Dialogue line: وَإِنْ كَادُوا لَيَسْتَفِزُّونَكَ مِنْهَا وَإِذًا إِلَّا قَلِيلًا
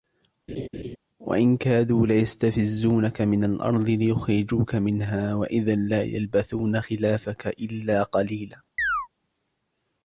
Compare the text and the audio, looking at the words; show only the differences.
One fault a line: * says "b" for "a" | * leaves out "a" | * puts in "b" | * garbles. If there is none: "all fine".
* puts in "مِنَ الْأَرْضِ لِيُخْرِجُوكَ"
* puts in "لَا يَلْبَثُونَ خِلَافَكَ"